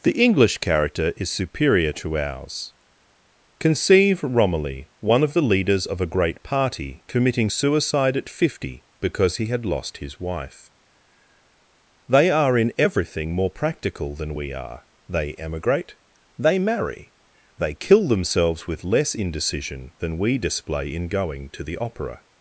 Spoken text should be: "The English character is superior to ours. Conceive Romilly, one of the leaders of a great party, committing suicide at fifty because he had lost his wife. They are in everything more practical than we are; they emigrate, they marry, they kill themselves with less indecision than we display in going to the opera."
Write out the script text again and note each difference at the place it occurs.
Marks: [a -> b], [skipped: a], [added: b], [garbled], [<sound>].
"The English character is superior to ours. Conceive Romilly, one of the leaders of a great party, committing suicide at fifty because he had lost his wife. They are in everything more practical than we are; they emigrate, they marry, they kill themselves with less indecision than we display in going to the opera."